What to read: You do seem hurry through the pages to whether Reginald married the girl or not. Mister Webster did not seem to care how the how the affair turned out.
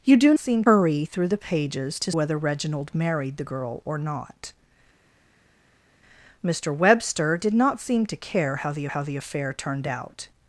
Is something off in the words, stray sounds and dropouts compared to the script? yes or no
no